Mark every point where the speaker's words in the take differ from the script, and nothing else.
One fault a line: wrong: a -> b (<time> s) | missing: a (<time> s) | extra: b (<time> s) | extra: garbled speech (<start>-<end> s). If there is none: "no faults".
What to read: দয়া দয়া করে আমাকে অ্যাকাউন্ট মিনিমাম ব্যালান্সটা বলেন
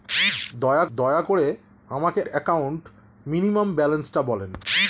no faults